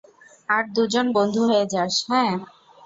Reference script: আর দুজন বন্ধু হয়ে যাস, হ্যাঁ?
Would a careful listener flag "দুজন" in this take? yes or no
no